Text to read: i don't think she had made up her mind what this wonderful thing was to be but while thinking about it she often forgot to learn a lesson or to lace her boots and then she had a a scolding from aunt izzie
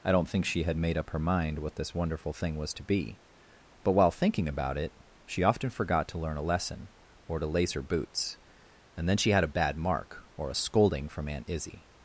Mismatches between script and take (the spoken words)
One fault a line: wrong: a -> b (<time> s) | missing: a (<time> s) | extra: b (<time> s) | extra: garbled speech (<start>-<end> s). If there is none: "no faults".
extra: bad mark or (9.5 s)